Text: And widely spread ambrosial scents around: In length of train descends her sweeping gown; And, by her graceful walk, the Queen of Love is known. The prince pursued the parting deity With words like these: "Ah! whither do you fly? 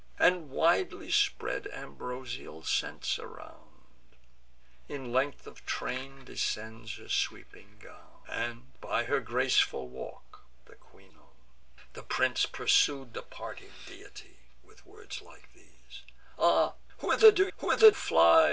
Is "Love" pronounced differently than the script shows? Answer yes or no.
yes